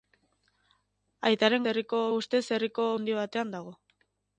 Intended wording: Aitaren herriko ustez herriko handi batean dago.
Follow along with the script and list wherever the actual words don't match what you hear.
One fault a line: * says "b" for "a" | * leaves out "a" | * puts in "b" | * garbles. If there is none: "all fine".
all fine